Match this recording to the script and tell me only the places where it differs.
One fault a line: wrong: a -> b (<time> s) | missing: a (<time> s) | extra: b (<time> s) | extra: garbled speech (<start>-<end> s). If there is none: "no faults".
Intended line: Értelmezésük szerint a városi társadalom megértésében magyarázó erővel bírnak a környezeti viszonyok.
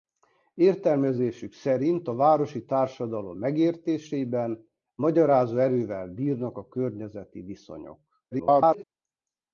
extra: garbled speech (8.3-8.8 s)